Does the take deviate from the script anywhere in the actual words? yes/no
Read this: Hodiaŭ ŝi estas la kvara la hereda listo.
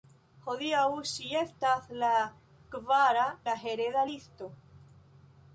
no